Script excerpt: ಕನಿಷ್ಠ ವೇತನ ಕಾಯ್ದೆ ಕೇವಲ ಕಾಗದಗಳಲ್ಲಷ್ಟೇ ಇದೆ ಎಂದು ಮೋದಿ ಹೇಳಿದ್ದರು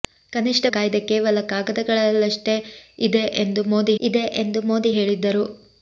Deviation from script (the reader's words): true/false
true